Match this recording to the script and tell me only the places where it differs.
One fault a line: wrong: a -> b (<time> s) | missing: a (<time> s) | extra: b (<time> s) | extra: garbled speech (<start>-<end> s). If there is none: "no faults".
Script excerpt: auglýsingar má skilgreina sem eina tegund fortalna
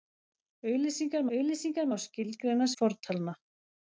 extra: auglýsingar (1.4 s)
missing: sem eina tegund (2.7 s)